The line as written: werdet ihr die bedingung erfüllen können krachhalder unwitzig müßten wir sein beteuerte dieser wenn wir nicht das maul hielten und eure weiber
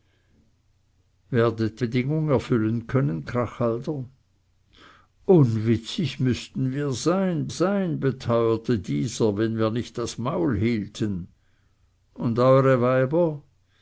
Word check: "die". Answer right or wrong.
wrong